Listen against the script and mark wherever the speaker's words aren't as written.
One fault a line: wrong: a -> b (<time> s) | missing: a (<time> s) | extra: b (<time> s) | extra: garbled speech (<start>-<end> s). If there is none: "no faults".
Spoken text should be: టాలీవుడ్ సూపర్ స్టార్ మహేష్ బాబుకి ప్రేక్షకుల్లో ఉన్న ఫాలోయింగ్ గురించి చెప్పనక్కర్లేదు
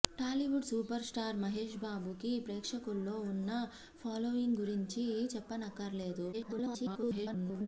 extra: garbled speech (6.3-7.7 s)